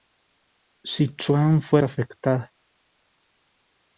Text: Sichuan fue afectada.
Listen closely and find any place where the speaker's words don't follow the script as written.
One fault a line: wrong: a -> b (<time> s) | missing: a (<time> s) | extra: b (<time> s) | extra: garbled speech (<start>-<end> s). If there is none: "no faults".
no faults